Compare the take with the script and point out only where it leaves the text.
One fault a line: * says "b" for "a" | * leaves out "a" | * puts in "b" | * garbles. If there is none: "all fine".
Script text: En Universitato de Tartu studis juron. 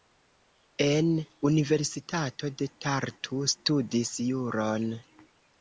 all fine